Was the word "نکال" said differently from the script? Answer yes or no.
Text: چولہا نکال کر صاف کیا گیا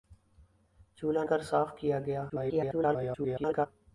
yes